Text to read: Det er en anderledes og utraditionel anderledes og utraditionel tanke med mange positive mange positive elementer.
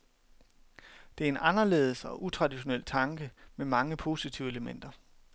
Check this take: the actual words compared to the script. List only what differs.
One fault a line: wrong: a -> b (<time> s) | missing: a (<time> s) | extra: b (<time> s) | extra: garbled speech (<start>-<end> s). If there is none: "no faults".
missing: anderledes og utraditionel (2.8 s)
missing: mange positive (4.5 s)